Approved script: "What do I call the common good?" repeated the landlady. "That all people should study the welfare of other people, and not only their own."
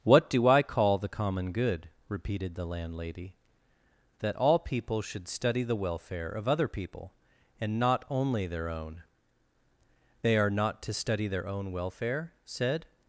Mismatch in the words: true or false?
true